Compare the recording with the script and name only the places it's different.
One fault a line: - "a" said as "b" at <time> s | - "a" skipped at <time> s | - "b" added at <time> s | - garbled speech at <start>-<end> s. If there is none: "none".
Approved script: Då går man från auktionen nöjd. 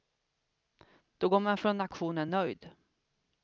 none